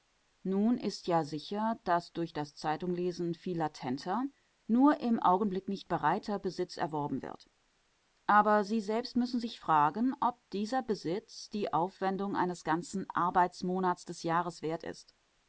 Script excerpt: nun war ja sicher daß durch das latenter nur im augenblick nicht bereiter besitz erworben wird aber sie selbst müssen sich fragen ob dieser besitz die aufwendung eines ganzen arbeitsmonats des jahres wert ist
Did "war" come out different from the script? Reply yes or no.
yes